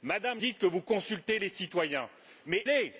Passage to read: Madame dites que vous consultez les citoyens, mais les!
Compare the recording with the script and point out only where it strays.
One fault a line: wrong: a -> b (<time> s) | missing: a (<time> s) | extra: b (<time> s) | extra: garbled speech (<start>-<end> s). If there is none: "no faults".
no faults